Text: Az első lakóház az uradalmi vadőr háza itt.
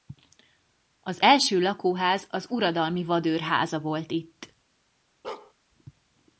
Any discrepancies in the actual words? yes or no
yes